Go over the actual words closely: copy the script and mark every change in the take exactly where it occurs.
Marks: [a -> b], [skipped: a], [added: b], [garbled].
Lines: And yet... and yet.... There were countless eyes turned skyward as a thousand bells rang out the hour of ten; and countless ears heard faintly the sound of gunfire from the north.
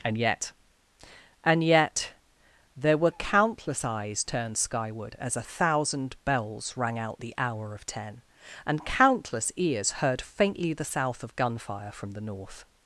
And yet... and yet.... There were countless eyes turned skyward as a thousand bells rang out the hour of ten; and countless ears heard faintly the [sound -> south] of gunfire from the north.